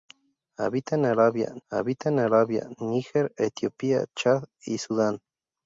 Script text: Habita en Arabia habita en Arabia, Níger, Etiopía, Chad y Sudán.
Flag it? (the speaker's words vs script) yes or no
no